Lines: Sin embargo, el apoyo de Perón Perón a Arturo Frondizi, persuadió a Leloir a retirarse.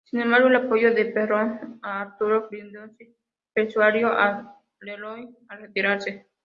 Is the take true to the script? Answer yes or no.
no